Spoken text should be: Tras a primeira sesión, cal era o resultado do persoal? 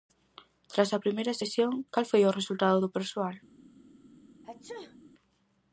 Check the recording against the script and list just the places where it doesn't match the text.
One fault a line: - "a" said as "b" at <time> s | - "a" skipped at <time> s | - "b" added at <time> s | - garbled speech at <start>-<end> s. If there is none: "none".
- "era" said as "foi" at 2.1 s